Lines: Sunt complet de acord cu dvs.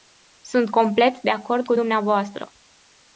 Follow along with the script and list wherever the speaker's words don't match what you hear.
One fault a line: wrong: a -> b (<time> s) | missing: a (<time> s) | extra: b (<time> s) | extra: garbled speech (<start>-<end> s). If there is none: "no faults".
no faults